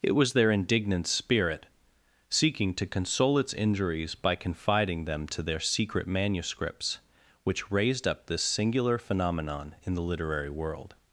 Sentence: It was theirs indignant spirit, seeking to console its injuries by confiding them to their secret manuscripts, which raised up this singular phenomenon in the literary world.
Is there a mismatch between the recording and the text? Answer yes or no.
yes